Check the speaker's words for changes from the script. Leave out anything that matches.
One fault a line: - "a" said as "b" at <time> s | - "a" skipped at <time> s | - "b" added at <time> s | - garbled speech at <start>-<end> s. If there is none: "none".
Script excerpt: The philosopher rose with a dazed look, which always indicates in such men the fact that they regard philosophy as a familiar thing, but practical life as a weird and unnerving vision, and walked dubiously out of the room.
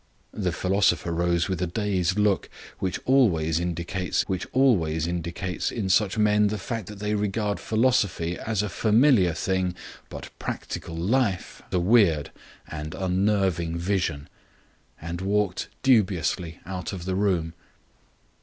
- "which always indicates" added at 4.3 s
- "as" skipped at 11.6 s